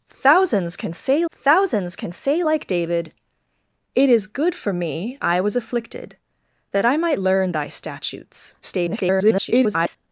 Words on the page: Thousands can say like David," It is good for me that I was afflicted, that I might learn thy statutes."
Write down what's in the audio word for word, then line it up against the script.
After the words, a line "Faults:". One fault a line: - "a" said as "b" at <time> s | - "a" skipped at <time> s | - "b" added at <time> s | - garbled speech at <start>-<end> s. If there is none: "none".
Thousands can say thousands can say like David," It is good for me I was afflicted, that I might learn thy statutes." [garbled]
Faults:
- "thousands can say" added at 1.3 s
- "that" skipped at 5.2 s
- garbled speech at 8.6-10.0 s